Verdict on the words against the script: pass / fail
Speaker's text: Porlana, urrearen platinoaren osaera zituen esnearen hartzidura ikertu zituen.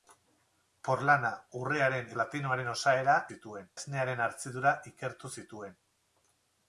pass